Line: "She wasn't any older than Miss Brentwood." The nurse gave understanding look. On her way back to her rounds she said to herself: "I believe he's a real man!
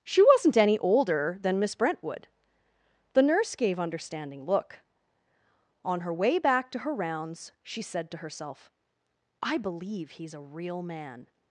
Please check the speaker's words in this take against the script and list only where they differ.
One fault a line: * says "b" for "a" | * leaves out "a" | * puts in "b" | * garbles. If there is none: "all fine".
all fine